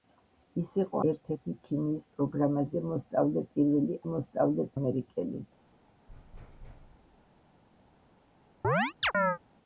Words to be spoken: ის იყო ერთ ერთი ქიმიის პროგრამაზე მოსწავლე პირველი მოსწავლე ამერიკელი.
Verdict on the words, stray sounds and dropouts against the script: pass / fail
fail